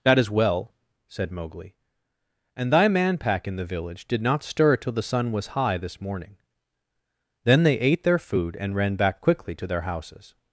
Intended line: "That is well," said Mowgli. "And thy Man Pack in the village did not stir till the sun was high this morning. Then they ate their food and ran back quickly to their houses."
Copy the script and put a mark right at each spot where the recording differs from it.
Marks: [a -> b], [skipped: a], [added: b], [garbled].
"That is well," said Mowgli. "And thy Man Pack in the village did not stir till the sun was high this morning. Then they ate their food and ran back quickly to their houses."